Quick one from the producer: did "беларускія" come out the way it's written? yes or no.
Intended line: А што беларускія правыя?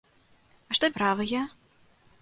no